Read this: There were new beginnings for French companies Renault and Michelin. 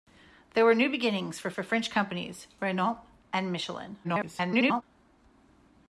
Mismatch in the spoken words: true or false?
true